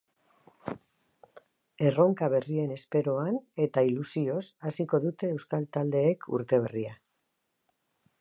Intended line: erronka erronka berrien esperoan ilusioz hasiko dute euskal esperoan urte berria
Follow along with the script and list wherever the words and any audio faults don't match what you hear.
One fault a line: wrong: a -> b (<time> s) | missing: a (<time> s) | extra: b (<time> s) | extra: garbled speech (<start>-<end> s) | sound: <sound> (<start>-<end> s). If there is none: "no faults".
missing: erronka (2.3 s)
extra: eta (3.7 s)
wrong: esperoan -> taldeek (5.8 s)